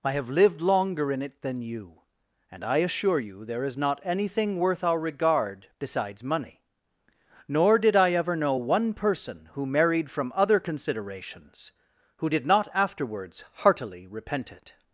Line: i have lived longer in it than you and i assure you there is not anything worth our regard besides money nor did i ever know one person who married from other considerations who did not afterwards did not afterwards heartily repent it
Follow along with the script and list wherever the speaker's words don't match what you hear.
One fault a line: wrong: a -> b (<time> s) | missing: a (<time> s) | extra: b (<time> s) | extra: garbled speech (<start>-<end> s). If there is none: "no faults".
missing: did not afterwards (13.4 s)